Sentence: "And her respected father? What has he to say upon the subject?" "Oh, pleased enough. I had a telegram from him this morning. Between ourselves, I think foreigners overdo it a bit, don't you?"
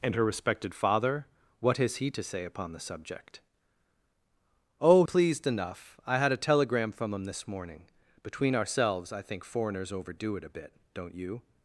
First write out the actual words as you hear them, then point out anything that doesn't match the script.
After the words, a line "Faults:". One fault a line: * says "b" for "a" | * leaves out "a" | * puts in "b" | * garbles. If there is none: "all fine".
"And her respected father? What has he to say upon the subject?" "Oh, pleased enough. I had a telegram from him this morning. Between ourselves, I think foreigners overdo it a bit, don't you?"
Faults:
all fine